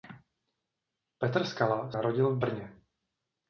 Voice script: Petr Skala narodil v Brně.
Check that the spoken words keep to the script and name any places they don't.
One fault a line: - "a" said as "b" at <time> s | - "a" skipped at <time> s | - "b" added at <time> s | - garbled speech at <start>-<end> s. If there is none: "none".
none